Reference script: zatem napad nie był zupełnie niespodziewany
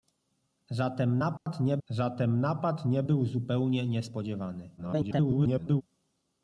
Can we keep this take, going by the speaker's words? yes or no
no